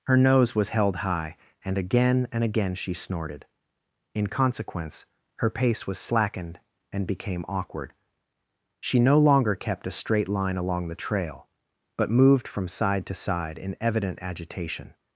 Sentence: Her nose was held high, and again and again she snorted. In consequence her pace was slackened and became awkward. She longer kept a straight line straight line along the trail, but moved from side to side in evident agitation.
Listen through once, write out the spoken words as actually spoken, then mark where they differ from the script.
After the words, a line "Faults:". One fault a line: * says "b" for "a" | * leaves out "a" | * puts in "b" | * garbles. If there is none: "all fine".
Her nose was held high, and again and again she snorted. In consequence her pace was slackened and became awkward. She no longer kept a straight line along the trail, but moved from side to side in evident agitation.
Faults:
* puts in "no"
* leaves out "straight line"